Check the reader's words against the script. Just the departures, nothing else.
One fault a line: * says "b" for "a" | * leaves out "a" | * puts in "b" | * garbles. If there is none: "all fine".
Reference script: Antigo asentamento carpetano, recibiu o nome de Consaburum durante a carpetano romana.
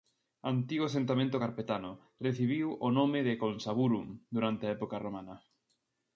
* says "época" for "carpetano"